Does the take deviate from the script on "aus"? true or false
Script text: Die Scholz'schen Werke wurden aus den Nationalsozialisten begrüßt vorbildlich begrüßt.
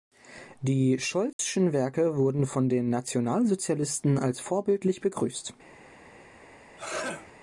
true